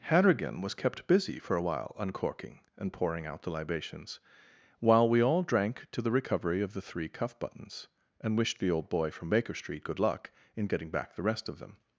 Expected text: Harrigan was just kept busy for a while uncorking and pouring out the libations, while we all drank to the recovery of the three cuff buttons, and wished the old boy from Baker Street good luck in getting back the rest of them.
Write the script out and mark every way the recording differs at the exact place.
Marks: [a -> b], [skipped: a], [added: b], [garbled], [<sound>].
Harrigan was [skipped: just] kept busy for a while uncorking and pouring out the libations, while we all drank to the recovery of the three cuff buttons, and wished the old boy from Baker Street good luck in getting back the rest of them.